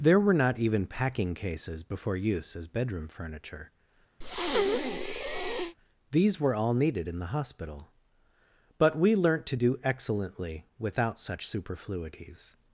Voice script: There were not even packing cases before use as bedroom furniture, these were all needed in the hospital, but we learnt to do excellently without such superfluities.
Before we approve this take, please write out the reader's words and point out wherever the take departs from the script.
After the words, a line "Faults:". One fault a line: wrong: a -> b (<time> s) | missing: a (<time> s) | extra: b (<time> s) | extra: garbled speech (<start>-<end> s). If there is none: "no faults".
There were not even packing cases before use as bedroom furniture, these were all needed in the hospital, but we learnt to do excellently without such superfluities.
Faults:
no faults